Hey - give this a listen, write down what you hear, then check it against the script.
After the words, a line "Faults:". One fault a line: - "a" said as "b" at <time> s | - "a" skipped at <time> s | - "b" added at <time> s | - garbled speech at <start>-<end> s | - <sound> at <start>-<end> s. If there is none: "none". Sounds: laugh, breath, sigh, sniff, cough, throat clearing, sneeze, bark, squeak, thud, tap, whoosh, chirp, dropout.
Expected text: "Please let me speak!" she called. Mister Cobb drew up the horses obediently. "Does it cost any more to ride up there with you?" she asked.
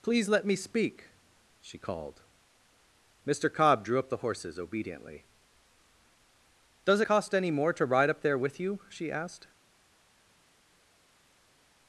"Please let me speak!" she called. Mister Cobb drew up the horses obediently. "Does cost any more to ride up there with you?" she asked.
Faults:
- "it" skipped at 7.0 s